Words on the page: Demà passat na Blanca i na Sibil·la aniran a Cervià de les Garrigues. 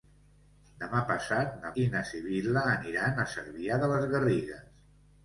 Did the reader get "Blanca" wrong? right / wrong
wrong